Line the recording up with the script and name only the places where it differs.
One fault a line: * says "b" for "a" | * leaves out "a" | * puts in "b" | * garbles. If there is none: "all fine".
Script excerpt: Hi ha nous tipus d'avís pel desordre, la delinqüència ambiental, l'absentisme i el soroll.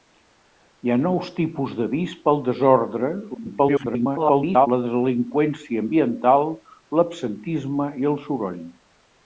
* garbles